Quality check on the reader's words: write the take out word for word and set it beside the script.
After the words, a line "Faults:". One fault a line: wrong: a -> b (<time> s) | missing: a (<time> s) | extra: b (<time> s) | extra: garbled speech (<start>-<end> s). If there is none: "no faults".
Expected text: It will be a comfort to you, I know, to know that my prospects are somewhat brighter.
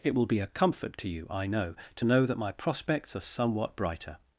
It will be a comfort to you, I know, to know that my prospects are somewhat brighter.
Faults:
no faults